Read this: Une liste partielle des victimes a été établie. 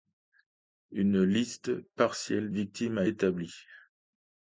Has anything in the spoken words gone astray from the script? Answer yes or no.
yes